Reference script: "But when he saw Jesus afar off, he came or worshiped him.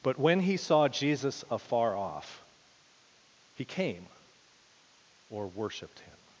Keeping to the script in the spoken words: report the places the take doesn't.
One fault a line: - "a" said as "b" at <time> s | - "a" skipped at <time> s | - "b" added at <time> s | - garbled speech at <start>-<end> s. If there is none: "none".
none